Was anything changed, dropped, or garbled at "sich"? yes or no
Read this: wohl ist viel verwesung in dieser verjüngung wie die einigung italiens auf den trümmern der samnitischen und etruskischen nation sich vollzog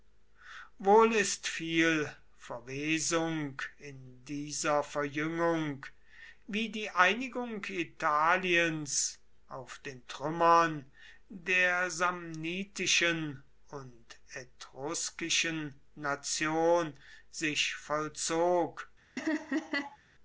no